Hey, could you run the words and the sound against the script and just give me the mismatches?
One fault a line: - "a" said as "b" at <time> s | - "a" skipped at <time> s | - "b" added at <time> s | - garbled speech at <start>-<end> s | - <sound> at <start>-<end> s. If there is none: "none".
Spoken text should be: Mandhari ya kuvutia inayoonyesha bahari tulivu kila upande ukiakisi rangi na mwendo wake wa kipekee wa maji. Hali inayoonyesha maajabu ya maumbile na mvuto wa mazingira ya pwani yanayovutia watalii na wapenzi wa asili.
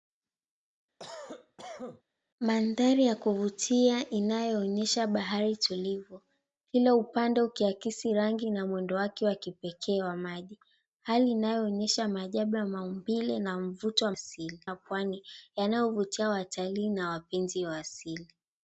- cough at 1.0-2.0 s
- "mazingira" said as "asili" at 14.1 s